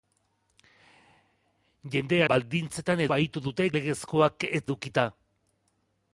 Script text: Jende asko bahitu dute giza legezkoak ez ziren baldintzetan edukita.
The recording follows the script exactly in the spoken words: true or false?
false